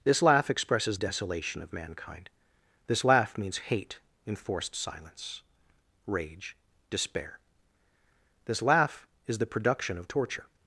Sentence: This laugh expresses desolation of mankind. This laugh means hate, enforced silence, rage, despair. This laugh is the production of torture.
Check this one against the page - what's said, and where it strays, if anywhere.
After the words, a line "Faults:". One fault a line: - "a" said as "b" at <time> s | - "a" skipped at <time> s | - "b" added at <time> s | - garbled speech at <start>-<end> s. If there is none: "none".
This laugh expresses desolation of mankind. This laugh means hate, enforced silence, rage, despair. This laugh is the production of torture.
Faults:
none